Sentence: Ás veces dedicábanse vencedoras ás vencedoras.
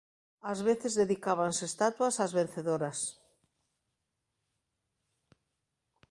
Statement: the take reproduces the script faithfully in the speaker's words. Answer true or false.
false